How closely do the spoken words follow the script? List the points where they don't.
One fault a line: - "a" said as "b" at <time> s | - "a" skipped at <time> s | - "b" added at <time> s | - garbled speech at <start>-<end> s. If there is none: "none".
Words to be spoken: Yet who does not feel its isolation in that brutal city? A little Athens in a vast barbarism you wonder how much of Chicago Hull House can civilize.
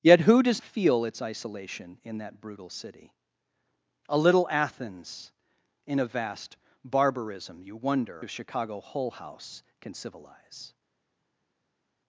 - "not" skipped at 0.6 s
- "how much" skipped at 8.2 s